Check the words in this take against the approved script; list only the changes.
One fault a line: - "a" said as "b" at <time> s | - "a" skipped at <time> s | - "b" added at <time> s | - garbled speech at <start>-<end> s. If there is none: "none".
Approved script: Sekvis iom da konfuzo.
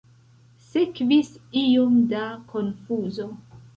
none